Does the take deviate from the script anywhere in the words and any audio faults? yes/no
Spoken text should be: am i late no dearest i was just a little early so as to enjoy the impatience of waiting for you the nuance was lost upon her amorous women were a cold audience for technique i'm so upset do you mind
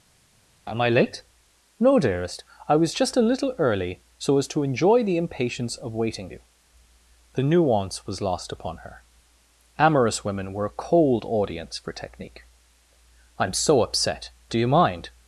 yes